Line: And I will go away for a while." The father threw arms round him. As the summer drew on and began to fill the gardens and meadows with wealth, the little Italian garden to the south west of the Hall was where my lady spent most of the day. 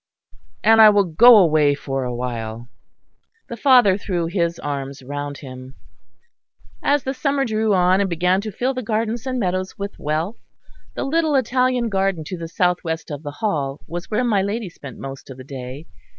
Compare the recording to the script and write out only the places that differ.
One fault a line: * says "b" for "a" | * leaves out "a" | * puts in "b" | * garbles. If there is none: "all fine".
* puts in "his"